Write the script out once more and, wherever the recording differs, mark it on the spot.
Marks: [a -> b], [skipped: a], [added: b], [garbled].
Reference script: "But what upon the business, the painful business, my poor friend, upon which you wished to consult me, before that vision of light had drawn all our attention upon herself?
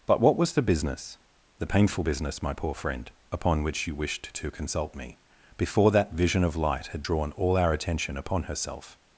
"But what [upon -> was] the business, the painful business, my poor friend, upon which you wished to consult me, before that vision of light had drawn all our attention upon herself?